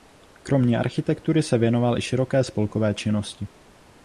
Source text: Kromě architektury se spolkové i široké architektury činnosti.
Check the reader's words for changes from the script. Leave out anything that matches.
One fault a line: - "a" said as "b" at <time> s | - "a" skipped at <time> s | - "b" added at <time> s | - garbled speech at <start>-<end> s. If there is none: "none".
- "spolkové" said as "věnoval" at 1.6 s
- "architektury" said as "spolkové" at 2.4 s